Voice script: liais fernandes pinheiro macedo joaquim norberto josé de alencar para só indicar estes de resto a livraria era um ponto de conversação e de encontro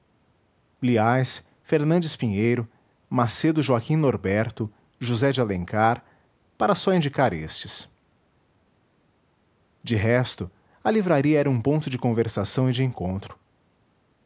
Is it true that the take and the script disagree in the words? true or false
false